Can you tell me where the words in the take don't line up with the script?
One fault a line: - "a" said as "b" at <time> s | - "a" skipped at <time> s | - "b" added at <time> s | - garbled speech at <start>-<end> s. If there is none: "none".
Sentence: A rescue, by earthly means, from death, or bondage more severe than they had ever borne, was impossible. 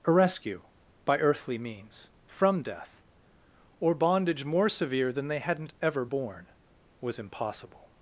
- "had" said as "hadn't" at 5.4 s